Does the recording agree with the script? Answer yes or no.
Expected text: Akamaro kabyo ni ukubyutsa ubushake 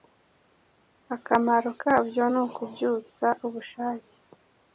yes